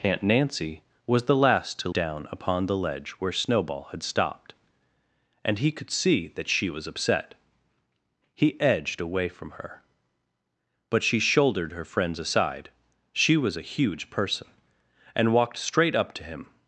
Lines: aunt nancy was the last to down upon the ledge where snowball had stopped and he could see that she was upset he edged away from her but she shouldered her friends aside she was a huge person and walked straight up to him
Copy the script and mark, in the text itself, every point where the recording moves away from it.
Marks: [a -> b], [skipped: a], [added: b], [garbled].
aunt nancy was the last to down upon the ledge where snowball had stopped and he could see that she was upset he edged away from her but she shouldered her friends aside she was a huge person and walked straight up to him